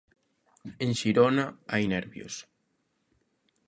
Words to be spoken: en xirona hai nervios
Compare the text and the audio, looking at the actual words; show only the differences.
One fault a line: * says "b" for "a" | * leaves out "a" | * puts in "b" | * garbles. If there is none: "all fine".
all fine